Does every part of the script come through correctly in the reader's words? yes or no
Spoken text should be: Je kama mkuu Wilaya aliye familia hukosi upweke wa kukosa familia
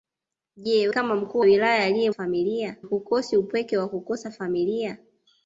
yes